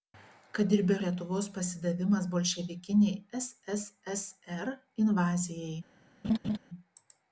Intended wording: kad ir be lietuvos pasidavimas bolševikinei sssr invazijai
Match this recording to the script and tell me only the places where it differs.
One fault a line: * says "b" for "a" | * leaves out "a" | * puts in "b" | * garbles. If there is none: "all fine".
all fine